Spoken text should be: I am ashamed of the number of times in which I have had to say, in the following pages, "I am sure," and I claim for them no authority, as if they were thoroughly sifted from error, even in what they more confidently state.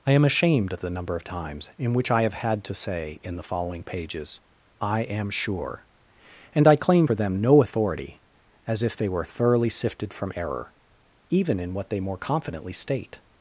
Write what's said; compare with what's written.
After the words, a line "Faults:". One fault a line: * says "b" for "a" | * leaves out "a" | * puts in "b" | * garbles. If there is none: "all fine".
I am ashamed of the number of times in which I have had to say, in the following pages, "I am sure," and I claim for them no authority, as if they were thoroughly sifted from error, even in what they more confidently state.
Faults:
all fine